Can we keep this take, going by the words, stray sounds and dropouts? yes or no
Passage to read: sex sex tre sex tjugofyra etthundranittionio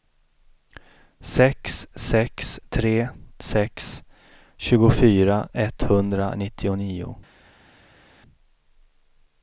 yes